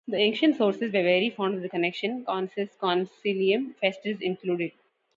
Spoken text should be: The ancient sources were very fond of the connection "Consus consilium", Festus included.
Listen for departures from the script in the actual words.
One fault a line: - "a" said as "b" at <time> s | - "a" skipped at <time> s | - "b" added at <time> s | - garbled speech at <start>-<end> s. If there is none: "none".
none